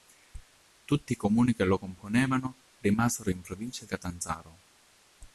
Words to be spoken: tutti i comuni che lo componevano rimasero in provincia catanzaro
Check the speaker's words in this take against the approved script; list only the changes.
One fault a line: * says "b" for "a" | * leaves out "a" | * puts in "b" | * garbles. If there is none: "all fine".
all fine